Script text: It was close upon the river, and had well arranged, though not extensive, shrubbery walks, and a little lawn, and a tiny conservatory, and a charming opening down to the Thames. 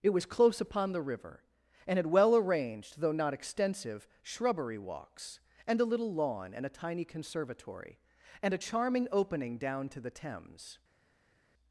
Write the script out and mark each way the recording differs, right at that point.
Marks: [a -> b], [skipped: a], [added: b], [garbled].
It was close upon the river, and had well arranged, though not extensive, shrubbery walks, and a little lawn, and a tiny conservatory, and a charming opening down to the Thames.